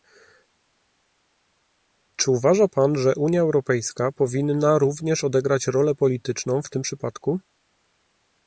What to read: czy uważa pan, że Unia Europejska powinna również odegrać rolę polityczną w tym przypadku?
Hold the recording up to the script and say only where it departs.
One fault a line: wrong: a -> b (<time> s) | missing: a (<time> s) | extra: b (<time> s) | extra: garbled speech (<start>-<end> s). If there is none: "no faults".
no faults